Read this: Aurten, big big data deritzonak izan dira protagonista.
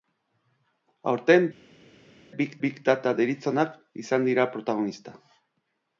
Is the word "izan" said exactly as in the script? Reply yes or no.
yes